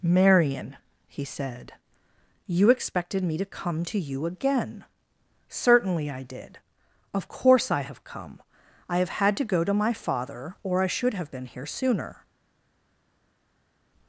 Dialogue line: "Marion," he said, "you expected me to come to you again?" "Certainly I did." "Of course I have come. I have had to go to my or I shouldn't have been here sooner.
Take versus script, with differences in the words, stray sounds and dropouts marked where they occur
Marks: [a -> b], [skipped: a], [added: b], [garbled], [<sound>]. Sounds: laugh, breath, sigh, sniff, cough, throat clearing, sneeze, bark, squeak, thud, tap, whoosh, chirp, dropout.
"Marion," he said, "you expected me to come to you again?" "Certainly I did." "Of course I have come. I have had to go to my [added: father] or I [shouldn't -> should] have been here sooner.